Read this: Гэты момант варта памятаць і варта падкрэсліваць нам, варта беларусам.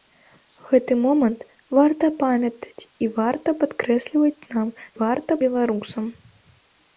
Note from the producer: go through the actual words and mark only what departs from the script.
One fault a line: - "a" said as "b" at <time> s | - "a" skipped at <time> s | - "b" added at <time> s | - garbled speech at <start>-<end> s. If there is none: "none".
none